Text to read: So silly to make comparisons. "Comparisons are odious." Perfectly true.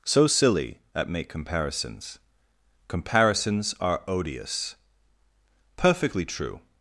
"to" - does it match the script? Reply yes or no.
no